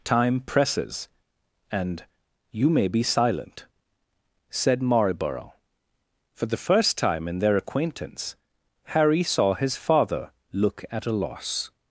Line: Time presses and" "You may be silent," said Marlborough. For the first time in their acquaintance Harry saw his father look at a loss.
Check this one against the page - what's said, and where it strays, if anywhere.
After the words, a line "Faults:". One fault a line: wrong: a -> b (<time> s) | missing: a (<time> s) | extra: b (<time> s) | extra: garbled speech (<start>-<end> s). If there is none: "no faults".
Time presses and" "You may be silent," said Marlborough. For the first time in their acquaintance Harry saw his father look at a loss.
Faults:
no faults